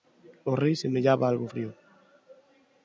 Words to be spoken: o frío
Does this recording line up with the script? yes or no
no